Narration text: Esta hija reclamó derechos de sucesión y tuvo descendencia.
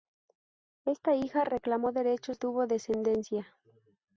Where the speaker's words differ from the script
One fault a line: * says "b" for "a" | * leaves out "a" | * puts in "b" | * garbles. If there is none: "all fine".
* leaves out "de sucesión y"